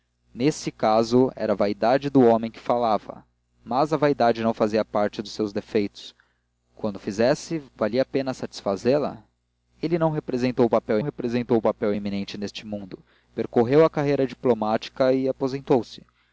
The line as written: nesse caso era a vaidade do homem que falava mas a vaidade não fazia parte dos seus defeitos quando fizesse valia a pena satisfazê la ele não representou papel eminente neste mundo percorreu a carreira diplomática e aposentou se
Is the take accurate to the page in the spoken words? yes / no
no